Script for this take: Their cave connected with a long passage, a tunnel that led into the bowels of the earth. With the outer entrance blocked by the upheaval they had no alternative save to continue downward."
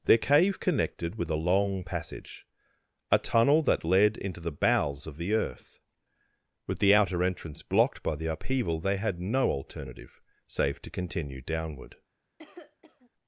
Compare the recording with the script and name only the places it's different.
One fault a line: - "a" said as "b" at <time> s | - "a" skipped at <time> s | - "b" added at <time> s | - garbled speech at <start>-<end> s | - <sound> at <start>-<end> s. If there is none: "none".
- cough at 12.4-13.1 s